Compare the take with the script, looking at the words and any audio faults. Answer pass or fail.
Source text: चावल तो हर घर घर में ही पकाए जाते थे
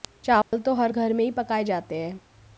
fail